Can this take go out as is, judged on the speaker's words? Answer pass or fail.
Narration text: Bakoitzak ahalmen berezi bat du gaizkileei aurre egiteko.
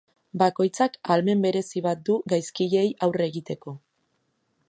pass